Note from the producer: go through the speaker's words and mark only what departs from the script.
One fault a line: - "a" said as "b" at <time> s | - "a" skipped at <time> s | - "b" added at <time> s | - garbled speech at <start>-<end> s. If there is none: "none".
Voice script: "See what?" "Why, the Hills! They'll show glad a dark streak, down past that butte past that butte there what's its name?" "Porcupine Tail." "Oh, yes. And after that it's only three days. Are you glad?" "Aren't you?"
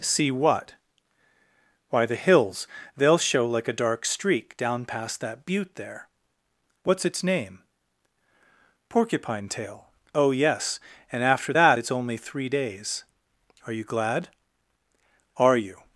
- "glad" said as "like" at 3.5 s
- "past that butte" skipped at 5.8 s
- "Aren't" said as "Are" at 15.4 s